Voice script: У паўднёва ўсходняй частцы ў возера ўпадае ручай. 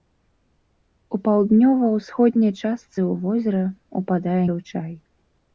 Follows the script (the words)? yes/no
yes